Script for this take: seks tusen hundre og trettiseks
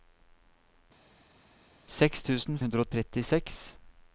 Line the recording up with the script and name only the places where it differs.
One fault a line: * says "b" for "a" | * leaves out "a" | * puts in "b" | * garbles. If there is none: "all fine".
all fine